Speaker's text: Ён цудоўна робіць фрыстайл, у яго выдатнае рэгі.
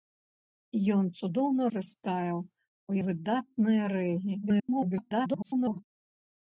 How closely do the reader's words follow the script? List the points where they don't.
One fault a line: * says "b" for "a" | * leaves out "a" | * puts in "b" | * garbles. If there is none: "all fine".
* leaves out "робіць"
* leaves out "яго"
* garbles